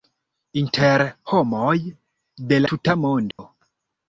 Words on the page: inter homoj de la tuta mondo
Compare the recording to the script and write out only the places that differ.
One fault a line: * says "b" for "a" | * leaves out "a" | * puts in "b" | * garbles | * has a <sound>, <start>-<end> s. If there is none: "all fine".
* leaves out "la"
* has a dropout, 3.3-3.4 s